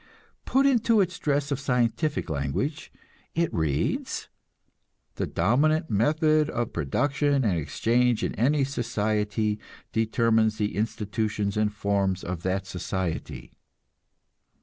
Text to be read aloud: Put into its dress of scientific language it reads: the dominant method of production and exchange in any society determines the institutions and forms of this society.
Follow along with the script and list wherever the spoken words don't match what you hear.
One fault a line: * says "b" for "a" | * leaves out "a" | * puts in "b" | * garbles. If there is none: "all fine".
* says "that" for "this"